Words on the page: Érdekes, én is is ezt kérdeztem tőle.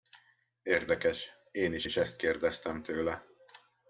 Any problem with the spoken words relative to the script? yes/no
no